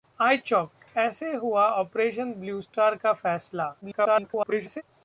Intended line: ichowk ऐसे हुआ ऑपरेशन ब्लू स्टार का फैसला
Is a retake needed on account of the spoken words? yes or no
yes